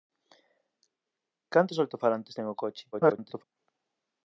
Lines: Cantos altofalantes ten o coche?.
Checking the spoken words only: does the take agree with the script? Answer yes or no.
no